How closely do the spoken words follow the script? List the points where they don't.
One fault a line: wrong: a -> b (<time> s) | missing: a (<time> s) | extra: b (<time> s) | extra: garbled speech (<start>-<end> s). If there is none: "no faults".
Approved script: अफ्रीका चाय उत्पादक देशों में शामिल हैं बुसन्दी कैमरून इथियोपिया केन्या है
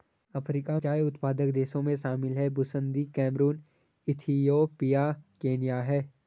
no faults